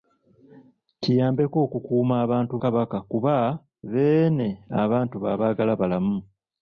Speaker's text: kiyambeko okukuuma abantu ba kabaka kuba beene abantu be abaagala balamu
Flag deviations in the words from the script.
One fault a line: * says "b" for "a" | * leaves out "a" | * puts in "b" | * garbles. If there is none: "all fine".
* leaves out "ba"